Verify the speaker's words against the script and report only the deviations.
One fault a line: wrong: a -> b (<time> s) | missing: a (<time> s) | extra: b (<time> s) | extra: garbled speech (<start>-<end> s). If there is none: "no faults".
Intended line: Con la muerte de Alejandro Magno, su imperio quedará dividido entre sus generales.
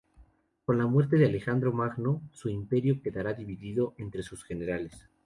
no faults